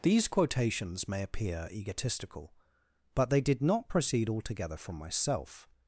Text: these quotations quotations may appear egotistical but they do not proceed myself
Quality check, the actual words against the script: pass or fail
fail